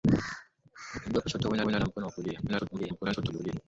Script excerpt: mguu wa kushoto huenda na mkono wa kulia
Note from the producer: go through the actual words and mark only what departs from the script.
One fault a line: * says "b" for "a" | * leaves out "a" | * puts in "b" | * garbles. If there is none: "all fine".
* puts in "huenda"
* garbles